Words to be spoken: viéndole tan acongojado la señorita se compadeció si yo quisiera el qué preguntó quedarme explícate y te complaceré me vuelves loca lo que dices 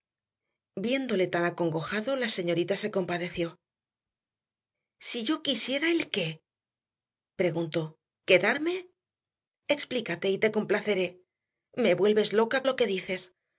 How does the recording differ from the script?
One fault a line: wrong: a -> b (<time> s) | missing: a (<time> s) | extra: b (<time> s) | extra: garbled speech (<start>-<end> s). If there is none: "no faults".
no faults